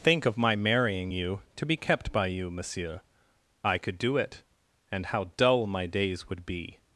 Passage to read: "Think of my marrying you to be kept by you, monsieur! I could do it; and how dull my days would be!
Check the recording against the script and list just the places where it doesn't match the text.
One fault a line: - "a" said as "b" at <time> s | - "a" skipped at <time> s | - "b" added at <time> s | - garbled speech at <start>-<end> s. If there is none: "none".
none